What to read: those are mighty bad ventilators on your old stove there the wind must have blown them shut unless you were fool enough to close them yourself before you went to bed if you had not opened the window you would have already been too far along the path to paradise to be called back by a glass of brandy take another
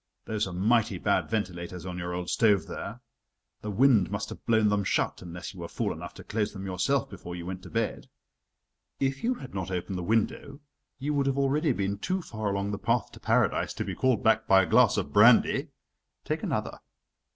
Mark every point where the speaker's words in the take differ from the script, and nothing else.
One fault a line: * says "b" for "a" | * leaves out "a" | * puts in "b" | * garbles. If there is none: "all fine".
all fine